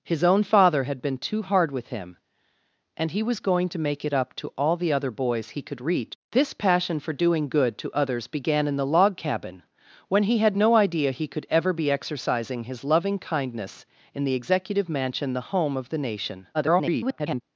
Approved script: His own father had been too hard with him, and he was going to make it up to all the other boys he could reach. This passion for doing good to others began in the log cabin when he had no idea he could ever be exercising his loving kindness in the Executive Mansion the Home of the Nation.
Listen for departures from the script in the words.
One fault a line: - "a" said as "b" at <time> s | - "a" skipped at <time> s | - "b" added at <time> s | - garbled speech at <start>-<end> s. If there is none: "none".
- garbled speech at 16.5-17.4 s